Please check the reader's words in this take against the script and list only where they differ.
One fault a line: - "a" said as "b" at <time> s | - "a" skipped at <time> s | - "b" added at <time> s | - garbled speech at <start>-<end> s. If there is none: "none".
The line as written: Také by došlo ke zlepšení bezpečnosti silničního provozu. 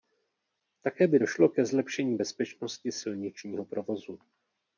none